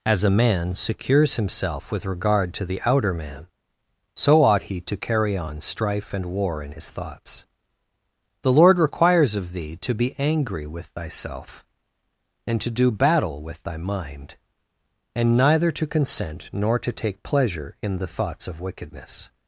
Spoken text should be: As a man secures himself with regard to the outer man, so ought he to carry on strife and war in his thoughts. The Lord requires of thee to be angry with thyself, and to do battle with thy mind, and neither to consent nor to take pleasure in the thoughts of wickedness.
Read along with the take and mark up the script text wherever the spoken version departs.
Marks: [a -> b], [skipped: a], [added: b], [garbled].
As a man secures himself with regard to the outer man, so ought he to carry on strife and war in his thoughts. The Lord requires of thee to be angry with thyself, and to do battle with thy mind, and neither to consent nor to take pleasure in the thoughts of wickedness.